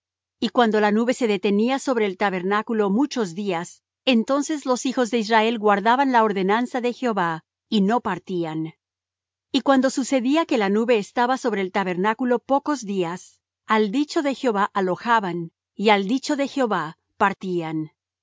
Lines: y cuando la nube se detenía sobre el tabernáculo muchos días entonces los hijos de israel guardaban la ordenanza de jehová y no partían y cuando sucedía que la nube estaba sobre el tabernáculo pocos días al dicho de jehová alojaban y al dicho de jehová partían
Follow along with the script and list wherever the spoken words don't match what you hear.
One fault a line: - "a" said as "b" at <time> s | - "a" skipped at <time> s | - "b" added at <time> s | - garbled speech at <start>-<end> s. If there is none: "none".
none